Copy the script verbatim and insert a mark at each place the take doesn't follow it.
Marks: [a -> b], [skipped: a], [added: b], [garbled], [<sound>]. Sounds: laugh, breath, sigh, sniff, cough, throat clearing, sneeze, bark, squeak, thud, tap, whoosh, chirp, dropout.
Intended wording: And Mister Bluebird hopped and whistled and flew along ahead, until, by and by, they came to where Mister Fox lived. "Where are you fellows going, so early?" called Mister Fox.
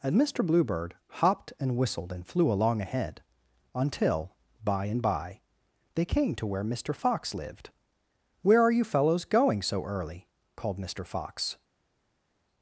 And Mister Bluebird hopped and whistled and flew along ahead, until, by and by, they came to where Mister Fox lived. "Where are you fellows going, so early?" called Mister Fox.